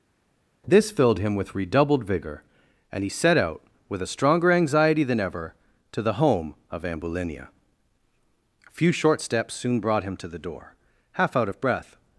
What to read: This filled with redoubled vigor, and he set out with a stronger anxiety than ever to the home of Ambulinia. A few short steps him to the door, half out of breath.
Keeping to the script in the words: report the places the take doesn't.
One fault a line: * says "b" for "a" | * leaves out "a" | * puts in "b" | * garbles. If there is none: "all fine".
* puts in "him"
* puts in "soon brought"